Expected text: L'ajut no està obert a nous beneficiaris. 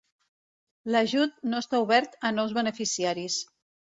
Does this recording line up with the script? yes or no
yes